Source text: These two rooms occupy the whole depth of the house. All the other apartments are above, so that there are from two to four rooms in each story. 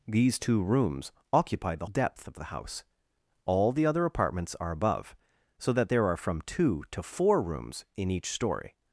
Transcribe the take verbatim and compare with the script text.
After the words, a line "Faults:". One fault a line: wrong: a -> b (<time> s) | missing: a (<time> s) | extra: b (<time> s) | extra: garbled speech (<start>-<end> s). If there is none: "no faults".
These two rooms occupy the depth of the house. All the other apartments are above, so that there are from two to four rooms in each story.
Faults:
missing: whole (1.9 s)